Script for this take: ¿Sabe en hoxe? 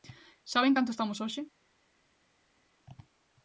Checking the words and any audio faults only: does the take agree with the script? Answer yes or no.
no